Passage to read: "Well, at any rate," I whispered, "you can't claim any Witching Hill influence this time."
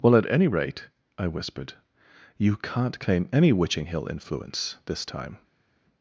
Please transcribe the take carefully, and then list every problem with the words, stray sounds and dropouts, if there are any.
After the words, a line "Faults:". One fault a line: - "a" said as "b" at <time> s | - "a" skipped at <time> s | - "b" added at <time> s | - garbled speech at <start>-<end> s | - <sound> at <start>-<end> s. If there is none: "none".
"Well, at any rate," I whispered, "you can't claim any Witching Hill influence this time."
Faults:
none